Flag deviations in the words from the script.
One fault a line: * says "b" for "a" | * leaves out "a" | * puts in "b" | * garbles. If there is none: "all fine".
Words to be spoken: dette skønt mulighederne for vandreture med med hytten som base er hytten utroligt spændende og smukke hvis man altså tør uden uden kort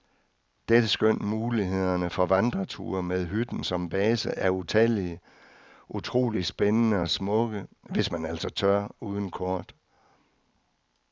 * leaves out "med"
* says "utallige" for "hytten"
* leaves out "uden"